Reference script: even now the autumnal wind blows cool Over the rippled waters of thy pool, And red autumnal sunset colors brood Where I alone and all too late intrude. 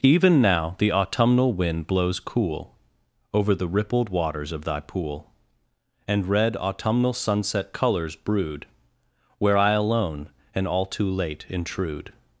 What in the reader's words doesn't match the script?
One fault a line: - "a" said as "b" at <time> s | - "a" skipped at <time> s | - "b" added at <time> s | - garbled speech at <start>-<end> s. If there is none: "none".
none